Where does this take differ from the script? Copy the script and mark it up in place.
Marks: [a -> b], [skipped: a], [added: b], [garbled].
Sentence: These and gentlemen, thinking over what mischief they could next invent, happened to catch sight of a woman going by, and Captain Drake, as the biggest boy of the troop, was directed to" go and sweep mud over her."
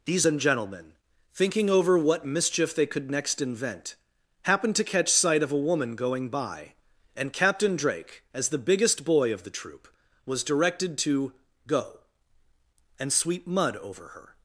These and gentlemen, thinking over what mischief they could next invent, happened to catch sight of a woman going by, and Captain Drake, as the biggest boy of the troop, was directed to" go and sweep mud over her."